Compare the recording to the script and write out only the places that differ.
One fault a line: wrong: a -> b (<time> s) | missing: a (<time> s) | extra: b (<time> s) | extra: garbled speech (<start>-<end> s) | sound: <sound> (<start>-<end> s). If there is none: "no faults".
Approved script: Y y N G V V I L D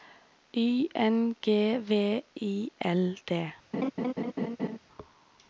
missing: y (0.9 s)
missing: V (2.2 s)
sound: laugh (3.7-4.8 s)